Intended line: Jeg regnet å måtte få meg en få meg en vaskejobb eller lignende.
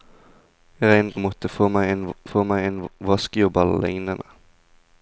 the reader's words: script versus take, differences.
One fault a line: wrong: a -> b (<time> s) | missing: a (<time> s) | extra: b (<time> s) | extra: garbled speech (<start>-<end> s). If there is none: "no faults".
no faults